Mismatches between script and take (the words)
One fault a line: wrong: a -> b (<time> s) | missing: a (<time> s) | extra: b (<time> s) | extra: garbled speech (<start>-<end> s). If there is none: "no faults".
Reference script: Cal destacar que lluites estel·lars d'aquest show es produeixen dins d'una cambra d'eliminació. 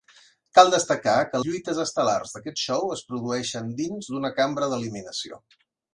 no faults